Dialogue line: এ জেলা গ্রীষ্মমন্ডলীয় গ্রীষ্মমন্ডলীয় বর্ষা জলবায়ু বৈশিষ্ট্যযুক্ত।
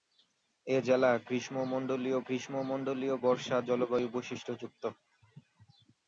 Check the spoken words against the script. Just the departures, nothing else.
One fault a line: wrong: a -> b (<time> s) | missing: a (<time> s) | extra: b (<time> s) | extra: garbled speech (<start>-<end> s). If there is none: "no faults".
no faults